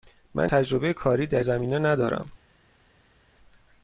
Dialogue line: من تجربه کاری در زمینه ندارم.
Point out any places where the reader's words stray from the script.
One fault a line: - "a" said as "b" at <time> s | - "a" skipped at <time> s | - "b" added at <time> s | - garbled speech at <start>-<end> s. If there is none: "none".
none